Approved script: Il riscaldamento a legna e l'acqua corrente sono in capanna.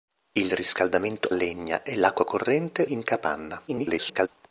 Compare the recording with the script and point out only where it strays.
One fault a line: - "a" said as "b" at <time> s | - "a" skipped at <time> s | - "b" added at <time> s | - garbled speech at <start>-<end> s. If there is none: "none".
- "a" skipped at 1.3 s
- "sono" skipped at 2.9 s
- garbled speech at 3.7-4.3 s